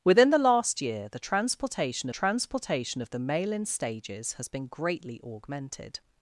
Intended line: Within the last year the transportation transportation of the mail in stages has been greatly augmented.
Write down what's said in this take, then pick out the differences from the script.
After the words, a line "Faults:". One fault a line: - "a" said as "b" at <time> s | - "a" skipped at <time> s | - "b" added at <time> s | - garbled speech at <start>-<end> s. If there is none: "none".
Within the last year the transportation transportation of the mail in stages has been greatly augmented.
Faults:
none